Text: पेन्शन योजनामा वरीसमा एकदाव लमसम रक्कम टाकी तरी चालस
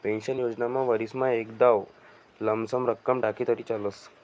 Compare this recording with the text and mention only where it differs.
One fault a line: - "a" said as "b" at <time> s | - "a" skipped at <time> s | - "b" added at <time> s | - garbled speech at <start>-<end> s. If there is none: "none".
none